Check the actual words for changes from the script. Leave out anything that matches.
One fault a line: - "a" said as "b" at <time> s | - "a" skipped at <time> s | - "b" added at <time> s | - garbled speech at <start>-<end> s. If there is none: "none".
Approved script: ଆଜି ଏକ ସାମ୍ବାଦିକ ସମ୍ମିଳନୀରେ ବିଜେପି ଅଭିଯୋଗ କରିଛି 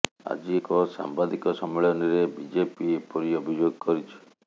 - "ଏପରି" added at 3.0 s